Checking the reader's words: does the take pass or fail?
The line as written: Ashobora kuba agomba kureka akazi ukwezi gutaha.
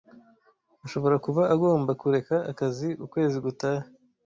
pass